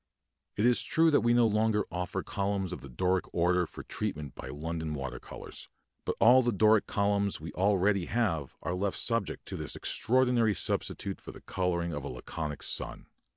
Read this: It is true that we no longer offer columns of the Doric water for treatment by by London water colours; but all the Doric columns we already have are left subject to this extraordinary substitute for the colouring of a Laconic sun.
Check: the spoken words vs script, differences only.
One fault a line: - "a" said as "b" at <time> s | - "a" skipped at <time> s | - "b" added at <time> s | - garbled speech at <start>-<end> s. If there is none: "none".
- "water" said as "order" at 3.3 s
- "by" skipped at 4.5 s